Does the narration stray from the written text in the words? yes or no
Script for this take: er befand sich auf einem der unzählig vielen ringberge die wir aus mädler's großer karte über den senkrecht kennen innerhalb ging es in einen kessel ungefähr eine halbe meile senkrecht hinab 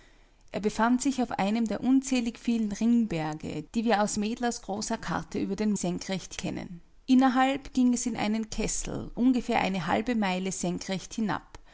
no